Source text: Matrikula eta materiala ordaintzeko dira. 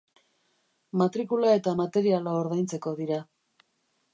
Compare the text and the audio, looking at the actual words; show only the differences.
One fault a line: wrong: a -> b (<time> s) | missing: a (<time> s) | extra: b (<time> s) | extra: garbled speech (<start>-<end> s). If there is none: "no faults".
no faults